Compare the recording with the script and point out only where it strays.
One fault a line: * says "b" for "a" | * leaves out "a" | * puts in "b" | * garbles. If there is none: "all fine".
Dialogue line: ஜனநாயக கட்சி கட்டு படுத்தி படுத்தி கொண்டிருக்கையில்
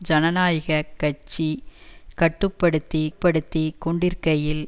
all fine